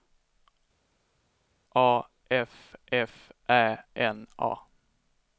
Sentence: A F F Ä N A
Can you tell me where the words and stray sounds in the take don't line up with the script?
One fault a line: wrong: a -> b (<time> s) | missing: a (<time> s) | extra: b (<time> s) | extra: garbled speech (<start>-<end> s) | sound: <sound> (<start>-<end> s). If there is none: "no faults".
no faults